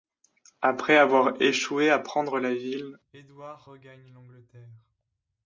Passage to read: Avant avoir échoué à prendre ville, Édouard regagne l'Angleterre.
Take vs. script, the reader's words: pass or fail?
fail